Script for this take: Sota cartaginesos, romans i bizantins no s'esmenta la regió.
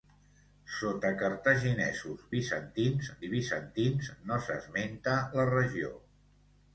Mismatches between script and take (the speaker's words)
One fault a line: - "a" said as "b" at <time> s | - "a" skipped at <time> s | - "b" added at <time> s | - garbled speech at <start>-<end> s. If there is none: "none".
- "romans" said as "bizantins" at 2.4 s